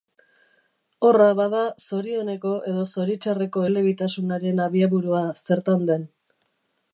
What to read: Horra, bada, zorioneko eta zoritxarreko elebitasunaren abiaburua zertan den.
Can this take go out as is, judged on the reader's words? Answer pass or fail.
fail